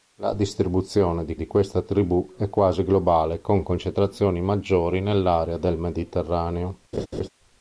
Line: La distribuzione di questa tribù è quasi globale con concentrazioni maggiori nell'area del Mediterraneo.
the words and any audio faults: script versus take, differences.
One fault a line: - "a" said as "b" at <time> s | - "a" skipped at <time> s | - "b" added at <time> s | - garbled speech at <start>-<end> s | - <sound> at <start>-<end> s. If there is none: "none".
- "di" added at 1.4 s
- laugh at 6.9-7.3 s